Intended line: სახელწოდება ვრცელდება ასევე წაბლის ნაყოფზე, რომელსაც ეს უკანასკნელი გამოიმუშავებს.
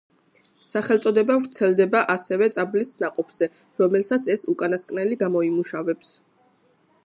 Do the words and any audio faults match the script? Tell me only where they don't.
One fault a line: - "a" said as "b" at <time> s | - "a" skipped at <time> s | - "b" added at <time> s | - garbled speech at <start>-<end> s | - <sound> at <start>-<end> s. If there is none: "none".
none